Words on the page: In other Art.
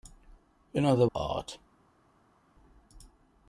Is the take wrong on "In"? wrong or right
right